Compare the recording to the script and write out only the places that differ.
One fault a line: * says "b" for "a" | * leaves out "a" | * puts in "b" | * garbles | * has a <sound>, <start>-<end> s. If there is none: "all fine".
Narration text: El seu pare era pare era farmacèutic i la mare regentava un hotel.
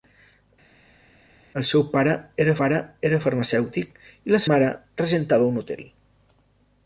all fine